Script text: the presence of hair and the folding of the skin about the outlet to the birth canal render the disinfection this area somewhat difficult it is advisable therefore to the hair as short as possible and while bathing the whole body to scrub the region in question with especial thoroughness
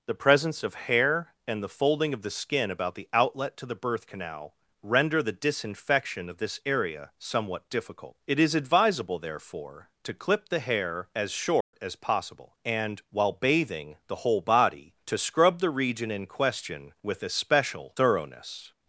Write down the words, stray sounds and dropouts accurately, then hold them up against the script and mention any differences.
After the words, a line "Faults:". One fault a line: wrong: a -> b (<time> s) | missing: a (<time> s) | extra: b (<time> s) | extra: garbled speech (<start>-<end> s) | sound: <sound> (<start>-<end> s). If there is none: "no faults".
the presence of hair and the folding of the skin about the outlet to the birth canal render the disinfection of this area somewhat difficult it is advisable therefore to clip the hair as short as possible and while bathing the whole body to scrub the region in question with especial thoroughness
Faults:
extra: of (6.3 s)
extra: clip (10.2 s)
sound: dropout (11.6-11.7 s)